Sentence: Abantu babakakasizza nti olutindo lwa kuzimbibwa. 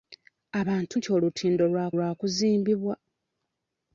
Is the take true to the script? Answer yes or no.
no